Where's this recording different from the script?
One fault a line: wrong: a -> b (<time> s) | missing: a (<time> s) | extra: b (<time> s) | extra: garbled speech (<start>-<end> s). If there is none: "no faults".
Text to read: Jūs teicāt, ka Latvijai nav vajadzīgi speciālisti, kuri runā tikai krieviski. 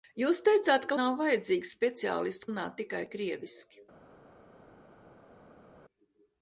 missing: Latvijai (1.0 s)
missing: kuri (2.5 s)